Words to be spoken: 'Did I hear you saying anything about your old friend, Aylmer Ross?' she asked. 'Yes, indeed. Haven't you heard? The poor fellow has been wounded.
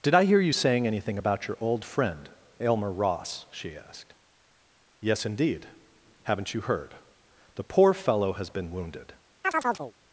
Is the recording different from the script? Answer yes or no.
no